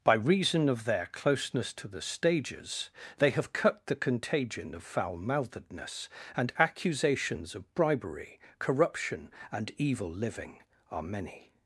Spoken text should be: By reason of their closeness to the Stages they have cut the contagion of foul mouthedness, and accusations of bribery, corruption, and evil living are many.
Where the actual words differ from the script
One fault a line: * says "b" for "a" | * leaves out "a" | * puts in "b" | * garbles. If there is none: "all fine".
all fine